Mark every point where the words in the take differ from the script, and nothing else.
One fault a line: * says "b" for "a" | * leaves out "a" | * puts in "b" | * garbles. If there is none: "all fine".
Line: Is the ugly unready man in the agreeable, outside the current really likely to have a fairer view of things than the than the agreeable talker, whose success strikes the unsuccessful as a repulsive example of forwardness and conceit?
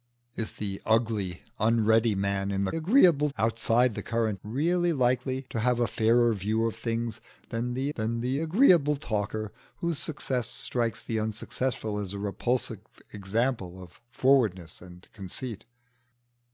all fine